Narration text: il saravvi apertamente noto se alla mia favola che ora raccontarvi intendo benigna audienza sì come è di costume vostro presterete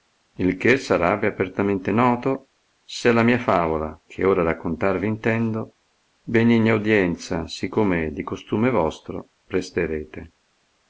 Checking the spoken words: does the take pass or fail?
fail